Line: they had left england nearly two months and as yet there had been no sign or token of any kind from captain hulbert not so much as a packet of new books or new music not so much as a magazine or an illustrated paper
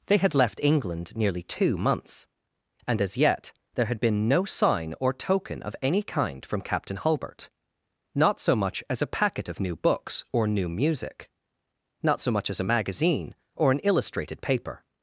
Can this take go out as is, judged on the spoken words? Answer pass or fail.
pass